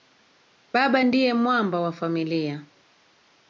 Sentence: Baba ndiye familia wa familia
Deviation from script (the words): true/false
true